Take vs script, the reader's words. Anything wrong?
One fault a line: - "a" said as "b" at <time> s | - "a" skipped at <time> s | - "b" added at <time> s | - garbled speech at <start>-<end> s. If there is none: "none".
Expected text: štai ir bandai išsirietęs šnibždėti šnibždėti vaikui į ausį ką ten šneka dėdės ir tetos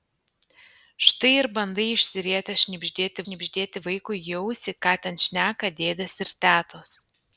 none